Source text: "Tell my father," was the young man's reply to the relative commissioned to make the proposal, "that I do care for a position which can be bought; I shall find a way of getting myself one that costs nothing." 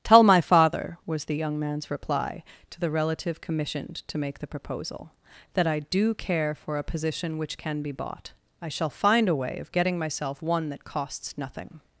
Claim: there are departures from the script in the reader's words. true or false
false